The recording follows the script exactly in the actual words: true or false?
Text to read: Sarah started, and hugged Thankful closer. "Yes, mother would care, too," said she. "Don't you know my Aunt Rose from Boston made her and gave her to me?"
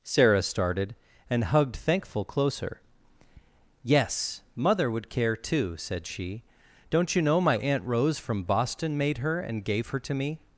true